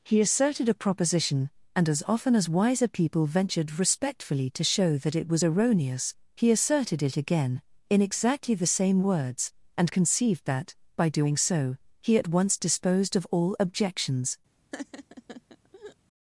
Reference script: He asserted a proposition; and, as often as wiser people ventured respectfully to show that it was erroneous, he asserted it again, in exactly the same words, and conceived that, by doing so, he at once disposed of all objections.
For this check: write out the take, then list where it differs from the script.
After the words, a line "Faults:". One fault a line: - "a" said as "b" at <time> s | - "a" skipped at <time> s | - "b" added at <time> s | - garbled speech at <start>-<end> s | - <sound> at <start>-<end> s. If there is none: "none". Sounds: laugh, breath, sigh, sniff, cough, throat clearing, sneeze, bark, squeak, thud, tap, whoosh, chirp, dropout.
He asserted a proposition; and, as often as wiser people ventured respectfully to show that it was erroneous, he asserted it again, in exactly the same words, and conceived that, by doing so, he at once disposed of all objections.
Faults:
- laugh at 14.7-16.0 s